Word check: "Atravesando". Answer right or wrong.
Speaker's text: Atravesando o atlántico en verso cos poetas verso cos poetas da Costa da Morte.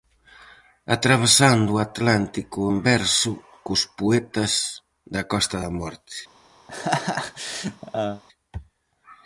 right